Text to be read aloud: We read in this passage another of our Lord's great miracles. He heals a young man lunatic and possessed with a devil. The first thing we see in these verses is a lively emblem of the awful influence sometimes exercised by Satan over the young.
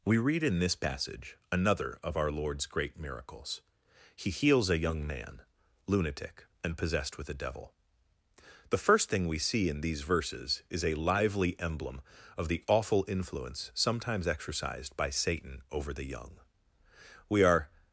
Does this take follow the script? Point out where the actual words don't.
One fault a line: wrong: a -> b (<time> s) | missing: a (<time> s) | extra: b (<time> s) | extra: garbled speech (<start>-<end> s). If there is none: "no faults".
extra: We are (17.3 s)